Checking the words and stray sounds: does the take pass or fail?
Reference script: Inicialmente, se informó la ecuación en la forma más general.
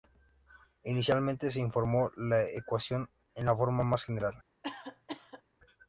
fail